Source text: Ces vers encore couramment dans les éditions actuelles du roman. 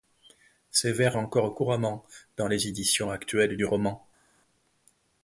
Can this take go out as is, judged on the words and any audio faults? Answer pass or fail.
pass